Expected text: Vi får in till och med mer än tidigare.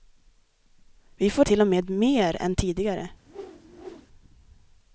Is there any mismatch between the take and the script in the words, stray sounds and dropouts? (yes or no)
yes